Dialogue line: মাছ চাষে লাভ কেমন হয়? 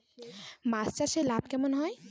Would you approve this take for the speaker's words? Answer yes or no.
yes